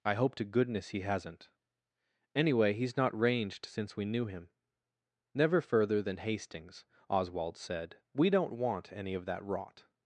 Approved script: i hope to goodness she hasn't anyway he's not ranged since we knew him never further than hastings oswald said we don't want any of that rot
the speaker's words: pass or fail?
fail